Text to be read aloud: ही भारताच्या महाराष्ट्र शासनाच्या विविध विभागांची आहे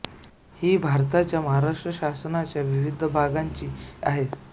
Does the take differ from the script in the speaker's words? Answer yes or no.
no